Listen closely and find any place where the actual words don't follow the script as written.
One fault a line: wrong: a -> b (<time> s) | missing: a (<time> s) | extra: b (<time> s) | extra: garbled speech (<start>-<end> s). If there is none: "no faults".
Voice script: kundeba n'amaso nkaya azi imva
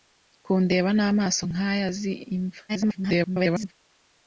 extra: garbled speech (2.7-3.7 s)